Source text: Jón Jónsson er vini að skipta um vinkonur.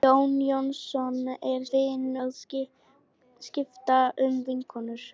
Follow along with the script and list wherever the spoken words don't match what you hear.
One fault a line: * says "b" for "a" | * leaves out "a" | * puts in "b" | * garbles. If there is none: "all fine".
all fine